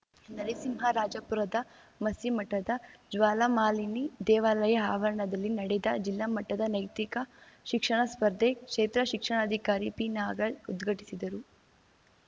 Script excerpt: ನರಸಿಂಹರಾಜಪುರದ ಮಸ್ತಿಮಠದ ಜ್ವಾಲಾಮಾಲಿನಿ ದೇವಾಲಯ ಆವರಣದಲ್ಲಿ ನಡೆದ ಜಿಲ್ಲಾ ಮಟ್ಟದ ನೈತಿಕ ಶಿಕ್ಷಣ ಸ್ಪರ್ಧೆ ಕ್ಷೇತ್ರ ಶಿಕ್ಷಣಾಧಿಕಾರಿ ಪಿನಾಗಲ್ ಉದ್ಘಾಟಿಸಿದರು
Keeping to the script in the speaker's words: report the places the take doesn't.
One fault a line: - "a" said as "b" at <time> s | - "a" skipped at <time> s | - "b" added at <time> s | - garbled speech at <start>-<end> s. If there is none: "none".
none